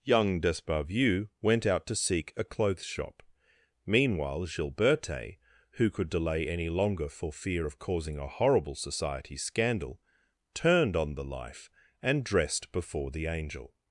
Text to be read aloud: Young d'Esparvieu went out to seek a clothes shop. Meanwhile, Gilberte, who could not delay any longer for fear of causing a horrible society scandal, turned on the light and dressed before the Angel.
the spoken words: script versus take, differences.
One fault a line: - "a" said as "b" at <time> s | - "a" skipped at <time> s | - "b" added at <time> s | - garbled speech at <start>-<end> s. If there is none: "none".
- "not" skipped at 6.1 s
- "light" said as "life" at 11.2 s